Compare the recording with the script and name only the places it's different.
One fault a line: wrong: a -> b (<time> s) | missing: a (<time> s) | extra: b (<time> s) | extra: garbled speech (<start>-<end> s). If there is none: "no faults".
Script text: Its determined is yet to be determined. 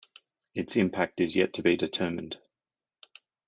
wrong: determined -> impact (0.8 s)